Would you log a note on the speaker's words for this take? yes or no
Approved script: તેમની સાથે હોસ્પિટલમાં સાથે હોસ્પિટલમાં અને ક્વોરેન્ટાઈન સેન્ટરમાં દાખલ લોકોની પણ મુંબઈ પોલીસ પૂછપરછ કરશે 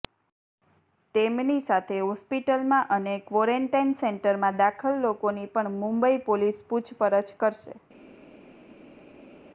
yes